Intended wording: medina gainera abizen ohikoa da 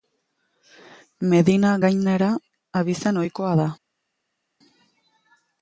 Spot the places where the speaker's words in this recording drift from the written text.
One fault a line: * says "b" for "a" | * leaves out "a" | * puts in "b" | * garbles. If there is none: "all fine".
all fine